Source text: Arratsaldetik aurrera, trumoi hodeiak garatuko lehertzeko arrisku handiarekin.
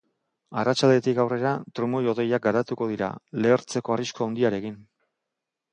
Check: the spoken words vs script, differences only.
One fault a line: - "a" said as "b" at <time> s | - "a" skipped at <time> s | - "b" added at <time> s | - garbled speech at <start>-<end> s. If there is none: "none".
- "dira" added at 2.9 s